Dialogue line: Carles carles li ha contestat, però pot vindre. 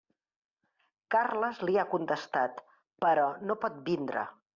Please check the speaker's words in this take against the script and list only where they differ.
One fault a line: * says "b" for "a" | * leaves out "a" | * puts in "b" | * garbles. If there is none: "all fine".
* leaves out "carles"
* puts in "no"